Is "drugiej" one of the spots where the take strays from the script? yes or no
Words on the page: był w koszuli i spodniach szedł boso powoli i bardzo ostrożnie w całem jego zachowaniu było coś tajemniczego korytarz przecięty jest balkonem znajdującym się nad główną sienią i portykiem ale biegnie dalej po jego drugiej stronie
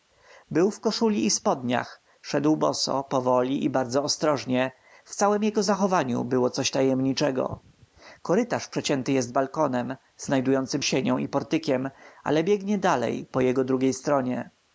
no